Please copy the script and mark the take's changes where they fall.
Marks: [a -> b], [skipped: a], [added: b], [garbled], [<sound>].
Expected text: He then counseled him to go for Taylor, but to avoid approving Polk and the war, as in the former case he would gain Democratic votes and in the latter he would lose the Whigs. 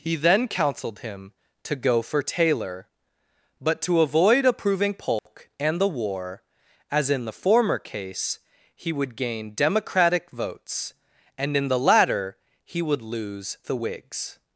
He then counseled him to go for Taylor, but to avoid approving Polk [dropout] and the war, as in the former case he would gain Democratic votes and in the latter he would lose the Whigs.